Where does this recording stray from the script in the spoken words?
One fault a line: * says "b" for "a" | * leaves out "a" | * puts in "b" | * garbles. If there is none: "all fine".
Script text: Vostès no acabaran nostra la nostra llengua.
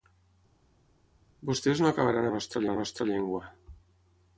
all fine